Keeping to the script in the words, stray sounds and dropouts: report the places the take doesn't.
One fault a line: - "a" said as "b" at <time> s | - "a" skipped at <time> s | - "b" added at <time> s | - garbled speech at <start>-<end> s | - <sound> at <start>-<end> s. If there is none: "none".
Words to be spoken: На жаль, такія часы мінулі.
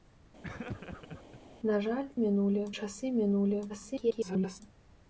- laugh at 0.4-1.4 s
- "такія" said as "мінулі" at 2.2 s
- garbled speech at 3.7-4.6 s